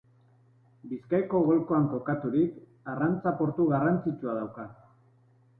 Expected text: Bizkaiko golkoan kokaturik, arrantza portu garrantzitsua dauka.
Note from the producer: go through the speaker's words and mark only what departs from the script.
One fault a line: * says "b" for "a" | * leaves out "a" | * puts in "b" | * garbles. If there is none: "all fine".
all fine